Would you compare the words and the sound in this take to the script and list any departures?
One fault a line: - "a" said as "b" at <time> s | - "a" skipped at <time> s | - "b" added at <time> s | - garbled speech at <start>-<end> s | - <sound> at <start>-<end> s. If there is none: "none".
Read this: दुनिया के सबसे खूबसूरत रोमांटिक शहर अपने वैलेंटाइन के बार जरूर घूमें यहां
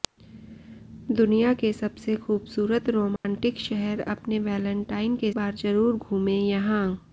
- dropout at 3.2-3.2 s